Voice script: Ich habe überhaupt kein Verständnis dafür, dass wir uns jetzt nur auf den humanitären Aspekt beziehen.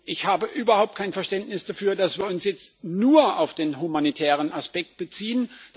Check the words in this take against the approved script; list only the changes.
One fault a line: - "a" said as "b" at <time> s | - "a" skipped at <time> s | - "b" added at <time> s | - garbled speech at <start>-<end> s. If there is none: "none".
none